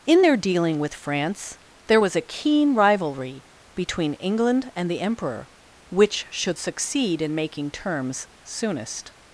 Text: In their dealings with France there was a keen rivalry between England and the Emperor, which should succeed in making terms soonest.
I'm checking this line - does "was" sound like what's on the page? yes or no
yes